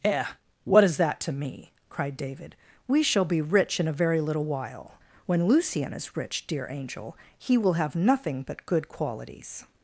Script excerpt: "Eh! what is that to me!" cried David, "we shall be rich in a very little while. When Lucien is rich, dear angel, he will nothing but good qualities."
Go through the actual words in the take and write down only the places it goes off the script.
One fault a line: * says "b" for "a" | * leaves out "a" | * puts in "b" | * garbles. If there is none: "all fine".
* puts in "have"